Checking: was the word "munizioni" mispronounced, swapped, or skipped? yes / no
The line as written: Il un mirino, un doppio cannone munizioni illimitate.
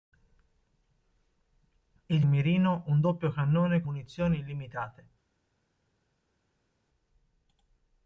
no